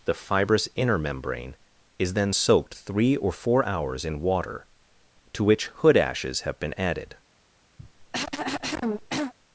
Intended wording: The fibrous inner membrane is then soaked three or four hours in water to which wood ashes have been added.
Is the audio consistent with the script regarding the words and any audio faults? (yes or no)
no